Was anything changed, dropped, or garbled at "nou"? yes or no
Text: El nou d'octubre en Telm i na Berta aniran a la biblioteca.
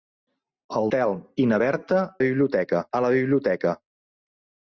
yes